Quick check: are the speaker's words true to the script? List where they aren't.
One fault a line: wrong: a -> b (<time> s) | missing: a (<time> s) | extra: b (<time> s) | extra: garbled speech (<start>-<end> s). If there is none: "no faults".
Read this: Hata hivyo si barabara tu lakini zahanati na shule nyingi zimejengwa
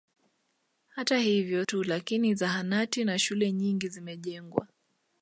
missing: si barabara (1.6 s)